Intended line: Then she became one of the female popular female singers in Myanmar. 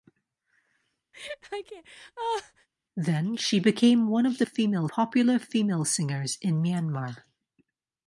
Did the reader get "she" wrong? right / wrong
right